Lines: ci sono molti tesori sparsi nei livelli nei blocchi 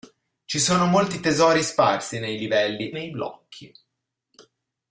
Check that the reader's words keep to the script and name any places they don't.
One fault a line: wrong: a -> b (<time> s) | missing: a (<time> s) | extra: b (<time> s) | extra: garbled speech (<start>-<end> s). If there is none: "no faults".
no faults